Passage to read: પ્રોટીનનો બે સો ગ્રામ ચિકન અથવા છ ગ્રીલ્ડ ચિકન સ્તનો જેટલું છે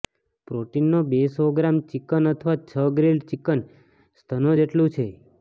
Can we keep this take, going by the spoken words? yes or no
yes